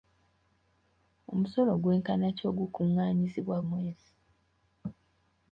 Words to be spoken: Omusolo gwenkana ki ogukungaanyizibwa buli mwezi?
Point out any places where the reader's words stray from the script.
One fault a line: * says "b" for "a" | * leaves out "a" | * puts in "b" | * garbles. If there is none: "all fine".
* leaves out "buli"